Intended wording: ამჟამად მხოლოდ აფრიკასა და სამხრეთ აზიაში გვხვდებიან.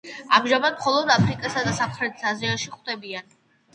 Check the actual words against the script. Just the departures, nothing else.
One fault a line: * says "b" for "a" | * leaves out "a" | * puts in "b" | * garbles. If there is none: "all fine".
all fine